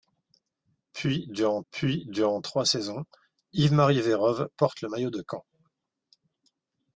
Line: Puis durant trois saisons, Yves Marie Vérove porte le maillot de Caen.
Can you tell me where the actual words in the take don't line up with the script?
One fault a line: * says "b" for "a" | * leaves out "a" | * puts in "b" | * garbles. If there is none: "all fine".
* puts in "puis durant"